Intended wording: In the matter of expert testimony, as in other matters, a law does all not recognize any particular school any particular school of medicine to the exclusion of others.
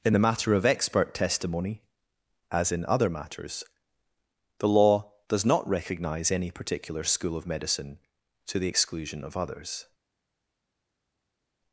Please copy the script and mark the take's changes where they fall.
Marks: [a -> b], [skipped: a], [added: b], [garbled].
In the matter of expert testimony, as in other matters, [a -> the] law does [skipped: all] not recognize any particular school [skipped: any particular school] of medicine to the exclusion of others.